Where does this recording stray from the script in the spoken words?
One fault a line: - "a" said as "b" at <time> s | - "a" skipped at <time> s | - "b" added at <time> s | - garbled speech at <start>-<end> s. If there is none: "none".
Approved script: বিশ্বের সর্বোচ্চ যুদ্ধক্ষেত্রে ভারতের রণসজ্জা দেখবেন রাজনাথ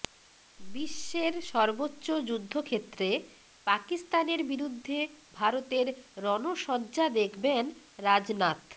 - "পাকিস্তানের বিরুদ্ধে" added at 3.7 s